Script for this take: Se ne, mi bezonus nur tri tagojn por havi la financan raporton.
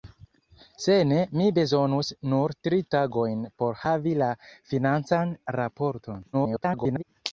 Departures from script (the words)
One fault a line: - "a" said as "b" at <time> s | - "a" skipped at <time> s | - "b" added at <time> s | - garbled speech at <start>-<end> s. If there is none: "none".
- garbled speech at 6.3-7.0 s